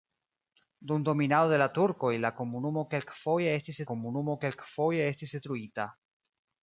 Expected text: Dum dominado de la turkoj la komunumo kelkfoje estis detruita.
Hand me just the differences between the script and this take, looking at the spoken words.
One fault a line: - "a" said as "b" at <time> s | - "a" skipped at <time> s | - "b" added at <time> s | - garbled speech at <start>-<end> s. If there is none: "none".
- "komunumo kelkfoje estis" added at 3.9 s